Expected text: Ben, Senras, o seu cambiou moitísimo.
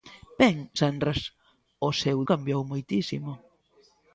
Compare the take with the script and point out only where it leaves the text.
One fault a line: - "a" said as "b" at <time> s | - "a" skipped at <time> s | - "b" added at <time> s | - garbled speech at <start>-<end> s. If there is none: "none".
none